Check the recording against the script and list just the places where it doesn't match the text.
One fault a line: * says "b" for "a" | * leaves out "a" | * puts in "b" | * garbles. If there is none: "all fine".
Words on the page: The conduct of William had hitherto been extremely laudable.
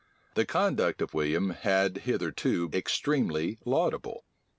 * leaves out "been"